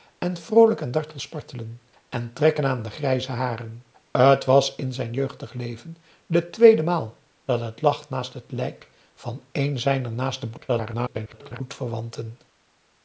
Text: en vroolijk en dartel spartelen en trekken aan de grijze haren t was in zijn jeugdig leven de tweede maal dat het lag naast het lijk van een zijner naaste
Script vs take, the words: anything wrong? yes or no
yes